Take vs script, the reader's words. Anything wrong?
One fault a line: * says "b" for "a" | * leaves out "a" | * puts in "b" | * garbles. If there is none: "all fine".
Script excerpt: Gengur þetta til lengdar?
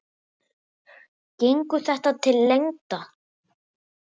all fine